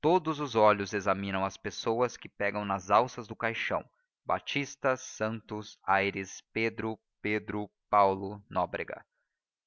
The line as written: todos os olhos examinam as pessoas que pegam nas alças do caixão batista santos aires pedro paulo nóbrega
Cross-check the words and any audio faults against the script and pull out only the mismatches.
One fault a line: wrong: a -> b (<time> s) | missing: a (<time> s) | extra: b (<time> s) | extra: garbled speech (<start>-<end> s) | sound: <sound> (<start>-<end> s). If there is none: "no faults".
extra: pedro (7.2 s)